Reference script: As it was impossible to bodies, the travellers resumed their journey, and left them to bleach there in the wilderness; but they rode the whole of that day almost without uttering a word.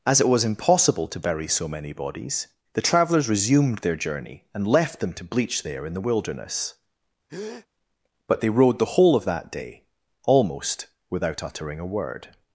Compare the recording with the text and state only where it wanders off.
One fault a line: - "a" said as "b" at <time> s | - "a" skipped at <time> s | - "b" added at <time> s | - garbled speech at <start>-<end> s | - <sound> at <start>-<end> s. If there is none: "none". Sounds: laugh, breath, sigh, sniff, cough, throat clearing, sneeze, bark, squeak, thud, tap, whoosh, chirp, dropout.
- "bury so many" added at 1.2 s
- breath at 7.3-7.7 s